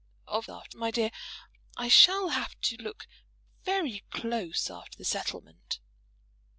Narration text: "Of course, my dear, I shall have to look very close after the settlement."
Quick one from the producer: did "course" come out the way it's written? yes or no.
no